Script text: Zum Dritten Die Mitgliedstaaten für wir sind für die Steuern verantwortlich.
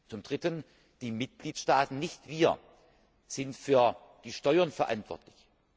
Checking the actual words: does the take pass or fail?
fail